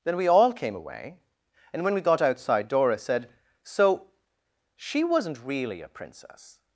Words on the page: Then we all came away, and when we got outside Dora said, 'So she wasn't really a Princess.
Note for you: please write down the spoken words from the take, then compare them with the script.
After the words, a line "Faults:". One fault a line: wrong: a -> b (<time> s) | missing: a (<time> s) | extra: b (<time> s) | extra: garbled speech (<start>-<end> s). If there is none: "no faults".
Then we all came away, and when we got outside Dora said, 'So she wasn't really a Princess.
Faults:
no faults